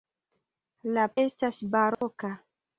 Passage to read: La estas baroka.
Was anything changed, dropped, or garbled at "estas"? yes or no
no